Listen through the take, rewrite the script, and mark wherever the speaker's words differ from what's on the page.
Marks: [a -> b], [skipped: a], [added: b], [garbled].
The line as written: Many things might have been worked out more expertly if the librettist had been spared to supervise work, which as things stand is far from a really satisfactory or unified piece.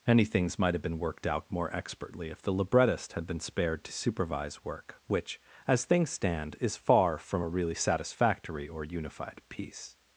Many things might have been worked out more expertly if the librettist had been spared to supervise work, which as things stand is far from a really satisfactory or unified piece.